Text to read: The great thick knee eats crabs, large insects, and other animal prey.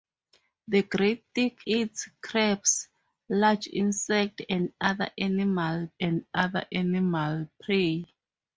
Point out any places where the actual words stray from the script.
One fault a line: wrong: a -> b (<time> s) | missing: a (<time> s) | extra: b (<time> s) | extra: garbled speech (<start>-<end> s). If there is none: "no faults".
missing: knee (1.7 s)
extra: and other animal (6.0 s)